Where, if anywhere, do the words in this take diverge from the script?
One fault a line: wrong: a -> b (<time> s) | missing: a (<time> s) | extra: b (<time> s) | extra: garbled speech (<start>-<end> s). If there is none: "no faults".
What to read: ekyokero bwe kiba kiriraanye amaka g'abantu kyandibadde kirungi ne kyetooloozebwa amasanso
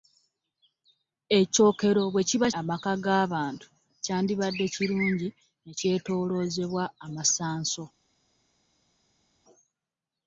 missing: kiriraanye (2.5 s)